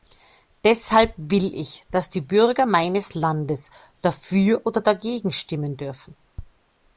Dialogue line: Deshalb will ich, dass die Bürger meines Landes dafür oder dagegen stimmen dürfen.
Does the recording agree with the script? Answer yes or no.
yes